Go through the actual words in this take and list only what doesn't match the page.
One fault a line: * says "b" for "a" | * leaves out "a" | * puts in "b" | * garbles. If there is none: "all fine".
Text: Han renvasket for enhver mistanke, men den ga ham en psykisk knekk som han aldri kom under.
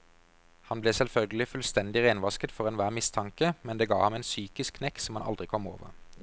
* puts in "ble selvfølgelig fullstendig"
* says "det" for "den"
* says "over" for "under"